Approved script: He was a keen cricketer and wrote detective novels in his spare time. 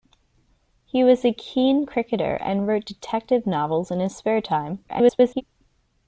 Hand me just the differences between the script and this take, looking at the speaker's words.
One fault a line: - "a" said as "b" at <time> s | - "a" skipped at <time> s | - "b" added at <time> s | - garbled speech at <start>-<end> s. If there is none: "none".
- garbled speech at 4.9-5.4 s